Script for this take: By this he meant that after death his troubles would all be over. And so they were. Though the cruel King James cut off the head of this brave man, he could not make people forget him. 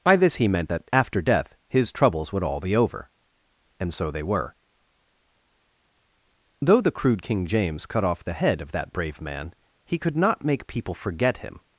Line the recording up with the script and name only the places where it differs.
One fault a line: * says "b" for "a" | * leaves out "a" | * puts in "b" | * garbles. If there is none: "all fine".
* says "crude" for "cruel"
* says "that" for "this"